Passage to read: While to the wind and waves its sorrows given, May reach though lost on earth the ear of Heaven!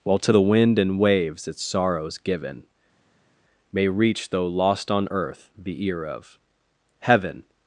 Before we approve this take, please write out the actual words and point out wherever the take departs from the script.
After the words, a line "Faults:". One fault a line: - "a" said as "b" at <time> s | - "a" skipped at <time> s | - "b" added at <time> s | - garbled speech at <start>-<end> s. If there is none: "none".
While to the wind and waves its sorrows given, May reach though lost on earth the ear of Heaven!
Faults:
none